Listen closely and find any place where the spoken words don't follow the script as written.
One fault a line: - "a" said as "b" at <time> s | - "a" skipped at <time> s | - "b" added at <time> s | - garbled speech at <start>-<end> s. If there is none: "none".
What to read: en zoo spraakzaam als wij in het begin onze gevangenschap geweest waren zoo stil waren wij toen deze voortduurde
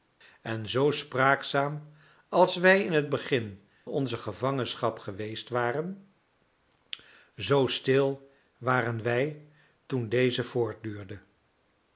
none